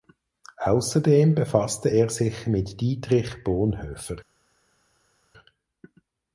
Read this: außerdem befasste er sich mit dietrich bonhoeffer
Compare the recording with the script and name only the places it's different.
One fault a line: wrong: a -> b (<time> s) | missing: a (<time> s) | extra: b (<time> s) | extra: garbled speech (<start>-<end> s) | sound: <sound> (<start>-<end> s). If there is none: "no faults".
no faults